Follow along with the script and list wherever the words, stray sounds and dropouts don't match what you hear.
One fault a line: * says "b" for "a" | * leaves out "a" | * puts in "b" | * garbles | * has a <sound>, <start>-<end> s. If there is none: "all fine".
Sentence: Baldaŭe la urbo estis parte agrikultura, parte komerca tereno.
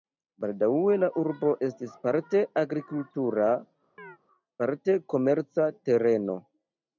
* has a chirp, 4.0-4.2 s